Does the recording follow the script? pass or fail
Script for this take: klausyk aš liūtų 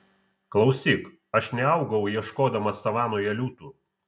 fail